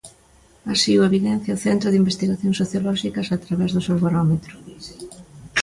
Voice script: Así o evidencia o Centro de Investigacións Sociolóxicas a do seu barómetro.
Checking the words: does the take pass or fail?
fail